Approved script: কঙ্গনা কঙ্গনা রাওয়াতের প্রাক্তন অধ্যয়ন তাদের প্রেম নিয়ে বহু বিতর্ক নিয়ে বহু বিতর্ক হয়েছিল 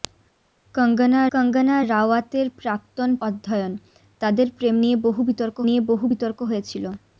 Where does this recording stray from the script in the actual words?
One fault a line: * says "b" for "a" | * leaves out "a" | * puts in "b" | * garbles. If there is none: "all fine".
all fine